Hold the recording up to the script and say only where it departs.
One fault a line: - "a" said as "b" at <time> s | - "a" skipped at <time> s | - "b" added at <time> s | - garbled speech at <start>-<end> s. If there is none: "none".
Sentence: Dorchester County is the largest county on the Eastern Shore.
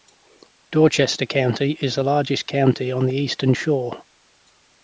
none